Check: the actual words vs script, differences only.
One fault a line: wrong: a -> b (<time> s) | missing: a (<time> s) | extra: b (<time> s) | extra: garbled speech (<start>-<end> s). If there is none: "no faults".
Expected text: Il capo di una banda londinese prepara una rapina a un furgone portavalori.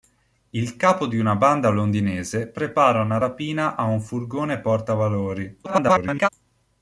extra: garbled speech (5.6-6.3 s)